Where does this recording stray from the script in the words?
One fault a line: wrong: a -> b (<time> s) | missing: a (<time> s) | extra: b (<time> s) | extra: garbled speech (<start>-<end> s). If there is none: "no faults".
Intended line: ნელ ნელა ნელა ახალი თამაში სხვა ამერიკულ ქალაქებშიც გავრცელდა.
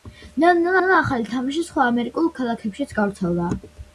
no faults